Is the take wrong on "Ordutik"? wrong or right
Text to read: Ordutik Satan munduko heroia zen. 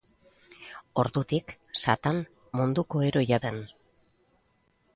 right